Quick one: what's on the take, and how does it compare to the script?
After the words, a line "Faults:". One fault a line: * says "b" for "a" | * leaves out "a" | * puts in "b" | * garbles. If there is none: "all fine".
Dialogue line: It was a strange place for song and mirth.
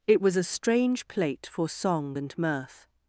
It was a strange plate for song and mirth.
Faults:
* says "plate" for "place"